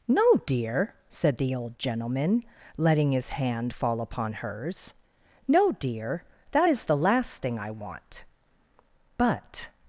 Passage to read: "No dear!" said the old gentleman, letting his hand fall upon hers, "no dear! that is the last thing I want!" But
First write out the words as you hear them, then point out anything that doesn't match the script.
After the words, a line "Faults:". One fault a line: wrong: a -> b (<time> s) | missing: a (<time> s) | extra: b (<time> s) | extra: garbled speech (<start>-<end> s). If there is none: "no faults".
"No dear!" said the old gentleman, letting his hand fall upon hers, "no dear! that is the last thing I want!" But
Faults:
no faults